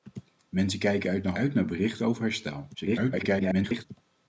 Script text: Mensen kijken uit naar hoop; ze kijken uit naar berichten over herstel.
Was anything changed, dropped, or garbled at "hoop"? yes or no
yes